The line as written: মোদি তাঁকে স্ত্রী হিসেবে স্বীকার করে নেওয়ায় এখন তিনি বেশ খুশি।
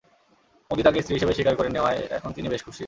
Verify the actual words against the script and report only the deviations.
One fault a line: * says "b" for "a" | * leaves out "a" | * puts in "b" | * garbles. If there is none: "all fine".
all fine